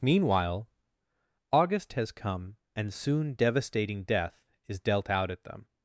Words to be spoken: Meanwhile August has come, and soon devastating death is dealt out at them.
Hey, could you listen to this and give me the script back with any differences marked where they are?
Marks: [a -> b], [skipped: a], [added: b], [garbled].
Meanwhile August has come, and soon devastating death is dealt out at them.